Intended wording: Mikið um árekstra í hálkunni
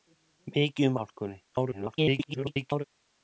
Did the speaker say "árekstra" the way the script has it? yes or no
no